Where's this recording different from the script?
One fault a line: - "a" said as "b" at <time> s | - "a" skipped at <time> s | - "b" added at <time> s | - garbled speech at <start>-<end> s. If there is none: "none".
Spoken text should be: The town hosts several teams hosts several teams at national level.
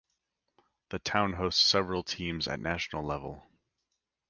- "hosts several teams" skipped at 2.5 s